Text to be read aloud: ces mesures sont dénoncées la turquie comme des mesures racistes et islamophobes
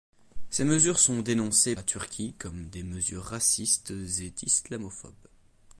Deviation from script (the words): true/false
false